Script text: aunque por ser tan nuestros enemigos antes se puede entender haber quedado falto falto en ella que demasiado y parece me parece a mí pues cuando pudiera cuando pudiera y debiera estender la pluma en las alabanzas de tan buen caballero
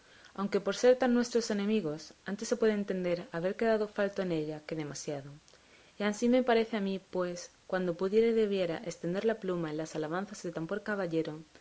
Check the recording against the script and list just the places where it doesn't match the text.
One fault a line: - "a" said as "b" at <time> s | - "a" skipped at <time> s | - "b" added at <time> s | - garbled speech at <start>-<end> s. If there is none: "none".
- "falto" skipped at 4.2 s
- "parece" said as "ansí" at 6.0 s
- "cuando pudiera" skipped at 8.3 s